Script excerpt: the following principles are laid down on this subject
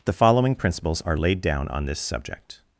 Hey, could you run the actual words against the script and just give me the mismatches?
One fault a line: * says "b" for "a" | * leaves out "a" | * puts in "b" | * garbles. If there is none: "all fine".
all fine